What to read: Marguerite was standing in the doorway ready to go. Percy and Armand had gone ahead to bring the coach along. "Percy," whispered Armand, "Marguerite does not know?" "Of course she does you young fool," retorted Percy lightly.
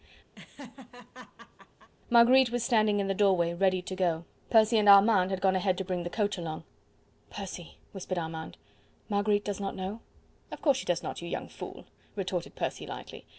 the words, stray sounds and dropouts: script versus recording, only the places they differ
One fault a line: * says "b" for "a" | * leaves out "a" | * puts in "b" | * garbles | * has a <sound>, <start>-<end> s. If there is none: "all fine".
* has a laugh, 0.4-1.9 s
* puts in "not"